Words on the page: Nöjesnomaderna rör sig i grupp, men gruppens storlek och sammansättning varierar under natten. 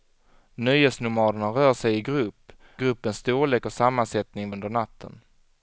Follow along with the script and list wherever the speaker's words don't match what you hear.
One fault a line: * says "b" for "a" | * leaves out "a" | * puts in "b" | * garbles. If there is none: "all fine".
* leaves out "men"
* leaves out "varierar"